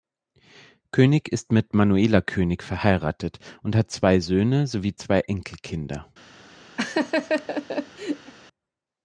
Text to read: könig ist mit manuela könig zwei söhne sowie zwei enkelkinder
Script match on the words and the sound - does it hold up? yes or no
no